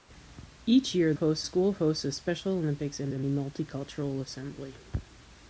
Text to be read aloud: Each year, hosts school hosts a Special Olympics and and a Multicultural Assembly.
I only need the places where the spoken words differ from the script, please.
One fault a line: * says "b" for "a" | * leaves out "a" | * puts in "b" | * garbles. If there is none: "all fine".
all fine